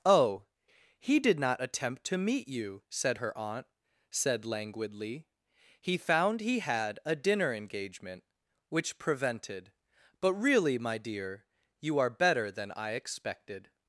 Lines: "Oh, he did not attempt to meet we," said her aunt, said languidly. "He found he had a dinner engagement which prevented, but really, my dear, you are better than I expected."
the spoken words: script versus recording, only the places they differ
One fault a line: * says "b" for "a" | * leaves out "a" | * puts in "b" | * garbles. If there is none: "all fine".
* says "you" for "we"